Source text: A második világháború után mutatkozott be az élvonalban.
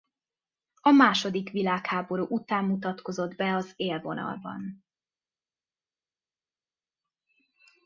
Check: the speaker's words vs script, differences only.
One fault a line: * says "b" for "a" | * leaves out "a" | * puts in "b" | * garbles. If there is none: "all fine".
all fine